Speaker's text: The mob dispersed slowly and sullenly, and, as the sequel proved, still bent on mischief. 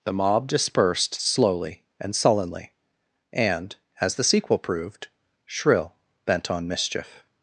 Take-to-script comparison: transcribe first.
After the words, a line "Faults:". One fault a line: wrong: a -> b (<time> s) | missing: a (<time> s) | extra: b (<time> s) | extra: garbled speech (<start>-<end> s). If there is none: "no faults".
The mob dispersed slowly and sullenly, and, as the sequel proved, shrill bent on mischief.
Faults:
wrong: still -> shrill (5.4 s)